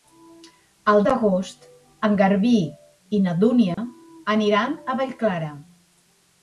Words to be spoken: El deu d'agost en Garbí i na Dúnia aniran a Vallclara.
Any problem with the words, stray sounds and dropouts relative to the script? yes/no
yes